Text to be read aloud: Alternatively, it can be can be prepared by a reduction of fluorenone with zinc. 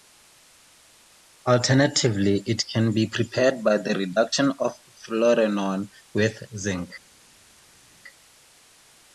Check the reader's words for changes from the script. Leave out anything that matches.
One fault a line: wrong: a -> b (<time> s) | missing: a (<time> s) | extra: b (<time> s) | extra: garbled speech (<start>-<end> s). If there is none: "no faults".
missing: can be (3.1 s)
wrong: a -> the (3.8 s)